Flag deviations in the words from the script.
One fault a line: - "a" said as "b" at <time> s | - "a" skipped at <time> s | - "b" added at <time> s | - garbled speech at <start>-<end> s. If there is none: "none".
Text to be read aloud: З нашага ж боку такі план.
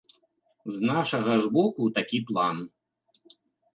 none